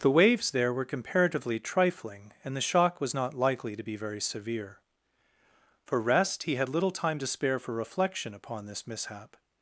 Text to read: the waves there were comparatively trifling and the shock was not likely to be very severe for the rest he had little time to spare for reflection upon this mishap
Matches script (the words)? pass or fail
fail